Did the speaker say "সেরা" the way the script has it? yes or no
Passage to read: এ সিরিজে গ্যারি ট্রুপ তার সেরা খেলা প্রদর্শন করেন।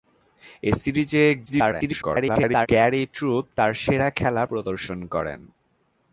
yes